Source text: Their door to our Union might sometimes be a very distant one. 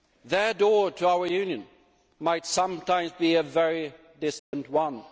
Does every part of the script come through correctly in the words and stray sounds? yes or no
no